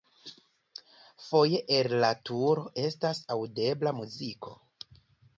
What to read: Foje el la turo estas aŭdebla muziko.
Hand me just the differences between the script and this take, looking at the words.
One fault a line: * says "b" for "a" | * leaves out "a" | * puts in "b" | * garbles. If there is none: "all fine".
all fine